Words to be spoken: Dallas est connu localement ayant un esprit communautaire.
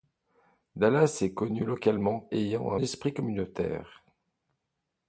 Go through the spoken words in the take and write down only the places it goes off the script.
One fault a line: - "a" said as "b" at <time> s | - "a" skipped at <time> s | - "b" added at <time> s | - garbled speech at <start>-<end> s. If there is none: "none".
none